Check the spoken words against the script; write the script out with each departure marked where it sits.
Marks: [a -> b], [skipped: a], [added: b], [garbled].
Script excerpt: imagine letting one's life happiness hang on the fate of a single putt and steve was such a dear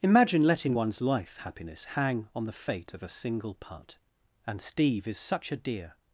imagine letting one's life happiness hang on the fate of a single putt and steve [was -> is] such a dear